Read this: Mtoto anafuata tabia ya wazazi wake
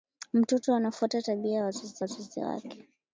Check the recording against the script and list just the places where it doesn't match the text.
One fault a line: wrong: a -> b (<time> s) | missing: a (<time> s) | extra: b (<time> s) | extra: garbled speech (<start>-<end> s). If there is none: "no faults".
extra: wazazi (2.0 s)